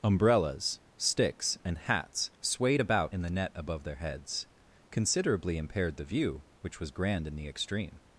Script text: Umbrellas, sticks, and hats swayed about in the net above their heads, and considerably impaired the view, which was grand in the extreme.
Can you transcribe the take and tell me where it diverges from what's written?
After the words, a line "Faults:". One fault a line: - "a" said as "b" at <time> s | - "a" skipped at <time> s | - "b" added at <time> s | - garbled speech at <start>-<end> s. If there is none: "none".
Umbrellas, sticks, and hats swayed about in the net above their heads, considerably impaired the view, which was grand in the extreme.
Faults:
- "and" skipped at 4.5 s